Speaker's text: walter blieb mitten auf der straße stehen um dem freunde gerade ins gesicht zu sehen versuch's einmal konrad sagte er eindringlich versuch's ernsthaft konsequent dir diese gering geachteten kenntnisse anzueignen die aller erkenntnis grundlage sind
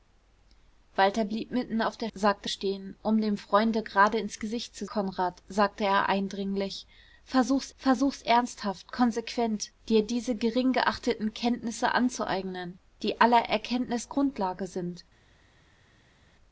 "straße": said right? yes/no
no